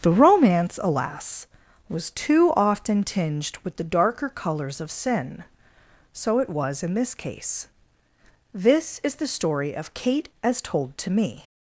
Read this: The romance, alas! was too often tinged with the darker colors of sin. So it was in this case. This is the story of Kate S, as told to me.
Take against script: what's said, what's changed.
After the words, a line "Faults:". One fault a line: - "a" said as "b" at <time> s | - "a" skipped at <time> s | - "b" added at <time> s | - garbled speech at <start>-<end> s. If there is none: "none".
The romance, alas! was too often tinged with the darker colors of sin. So it was in this case. This is the story of Kate As told to me.
Faults:
- "S" skipped at 10.3 s